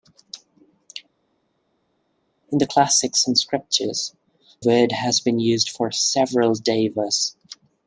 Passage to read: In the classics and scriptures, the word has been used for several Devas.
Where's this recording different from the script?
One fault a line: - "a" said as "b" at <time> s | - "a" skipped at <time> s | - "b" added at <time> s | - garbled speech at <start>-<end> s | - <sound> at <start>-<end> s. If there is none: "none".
- "the" skipped at 4.2 s